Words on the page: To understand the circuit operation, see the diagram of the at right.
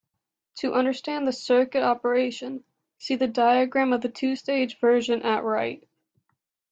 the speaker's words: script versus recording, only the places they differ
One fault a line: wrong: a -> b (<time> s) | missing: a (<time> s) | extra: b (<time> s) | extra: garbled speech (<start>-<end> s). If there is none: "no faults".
extra: two stage version (4.1 s)